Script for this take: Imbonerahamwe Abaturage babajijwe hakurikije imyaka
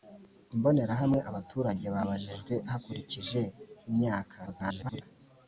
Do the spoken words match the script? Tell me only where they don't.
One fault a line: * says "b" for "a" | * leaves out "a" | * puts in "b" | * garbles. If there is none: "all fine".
* garbles